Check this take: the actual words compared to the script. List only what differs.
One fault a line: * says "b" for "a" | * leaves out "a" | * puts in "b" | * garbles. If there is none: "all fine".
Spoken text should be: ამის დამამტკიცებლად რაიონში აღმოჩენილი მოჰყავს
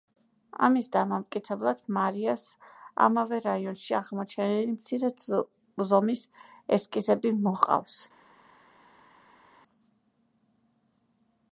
* puts in "მარიას ამავე"
* puts in "მცირე ზომის ესკიზები"